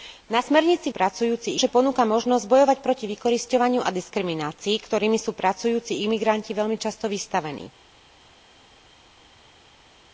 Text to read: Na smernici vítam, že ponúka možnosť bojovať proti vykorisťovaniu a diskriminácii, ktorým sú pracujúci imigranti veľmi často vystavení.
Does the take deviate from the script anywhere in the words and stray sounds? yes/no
yes